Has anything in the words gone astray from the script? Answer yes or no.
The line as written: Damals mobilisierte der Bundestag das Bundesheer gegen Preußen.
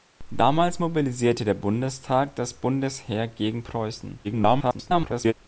yes